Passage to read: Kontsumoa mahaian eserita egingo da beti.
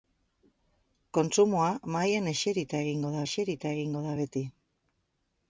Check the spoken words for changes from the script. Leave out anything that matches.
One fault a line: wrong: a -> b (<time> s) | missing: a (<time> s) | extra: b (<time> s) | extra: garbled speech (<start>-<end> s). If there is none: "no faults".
extra: eserita egingo da (3.2 s)